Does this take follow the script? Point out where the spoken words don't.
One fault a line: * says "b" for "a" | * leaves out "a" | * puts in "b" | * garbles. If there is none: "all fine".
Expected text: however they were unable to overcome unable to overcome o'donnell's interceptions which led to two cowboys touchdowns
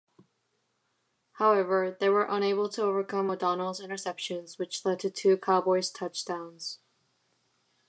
* leaves out "unable to overcome"